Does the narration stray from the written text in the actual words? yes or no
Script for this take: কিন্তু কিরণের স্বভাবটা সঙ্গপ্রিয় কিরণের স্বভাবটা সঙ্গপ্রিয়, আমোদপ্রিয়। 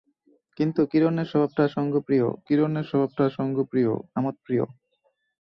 no